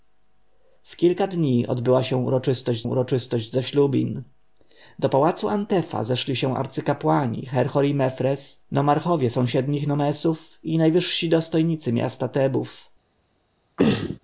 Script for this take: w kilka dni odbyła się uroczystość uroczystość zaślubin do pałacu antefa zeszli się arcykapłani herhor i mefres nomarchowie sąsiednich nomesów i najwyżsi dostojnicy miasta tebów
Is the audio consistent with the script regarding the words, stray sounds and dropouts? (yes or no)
no